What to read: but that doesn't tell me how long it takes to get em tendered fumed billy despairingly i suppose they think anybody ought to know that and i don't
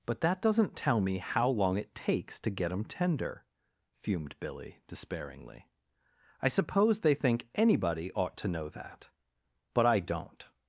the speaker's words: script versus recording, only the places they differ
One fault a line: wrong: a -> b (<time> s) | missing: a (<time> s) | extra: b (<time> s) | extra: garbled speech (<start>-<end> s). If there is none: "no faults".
wrong: tendered -> tender (2.9 s)
wrong: and -> but (9.7 s)